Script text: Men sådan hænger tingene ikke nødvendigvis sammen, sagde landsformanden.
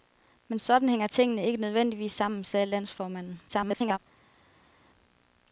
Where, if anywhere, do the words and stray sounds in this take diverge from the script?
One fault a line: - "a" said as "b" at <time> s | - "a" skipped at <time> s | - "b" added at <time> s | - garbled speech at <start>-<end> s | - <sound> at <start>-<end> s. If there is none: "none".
- garbled speech at 3.5-4.0 s